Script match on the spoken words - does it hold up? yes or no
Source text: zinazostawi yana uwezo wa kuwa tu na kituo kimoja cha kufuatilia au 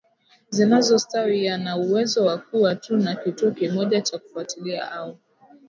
yes